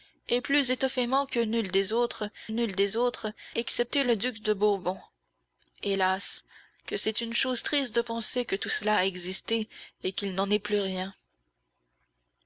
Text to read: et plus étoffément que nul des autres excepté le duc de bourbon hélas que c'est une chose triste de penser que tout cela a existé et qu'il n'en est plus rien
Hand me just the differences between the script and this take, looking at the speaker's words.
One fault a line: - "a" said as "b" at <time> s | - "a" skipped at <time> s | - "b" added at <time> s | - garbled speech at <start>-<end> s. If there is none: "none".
- "nul des autres" added at 2.5 s